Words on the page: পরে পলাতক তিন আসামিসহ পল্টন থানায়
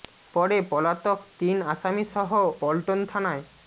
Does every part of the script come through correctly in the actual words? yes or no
yes